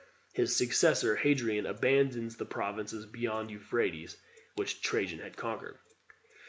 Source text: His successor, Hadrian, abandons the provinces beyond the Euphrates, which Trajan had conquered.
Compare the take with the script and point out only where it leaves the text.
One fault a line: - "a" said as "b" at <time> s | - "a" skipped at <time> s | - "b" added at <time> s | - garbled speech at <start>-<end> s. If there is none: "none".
none